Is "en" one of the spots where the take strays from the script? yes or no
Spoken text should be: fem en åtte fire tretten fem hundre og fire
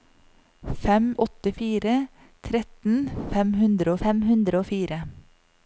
yes